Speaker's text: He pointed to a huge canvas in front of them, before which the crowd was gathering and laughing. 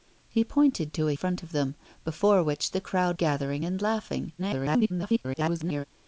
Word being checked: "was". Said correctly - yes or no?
no